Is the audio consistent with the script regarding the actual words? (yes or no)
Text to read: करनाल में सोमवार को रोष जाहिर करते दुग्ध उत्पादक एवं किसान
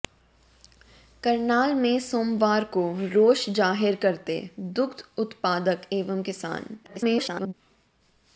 no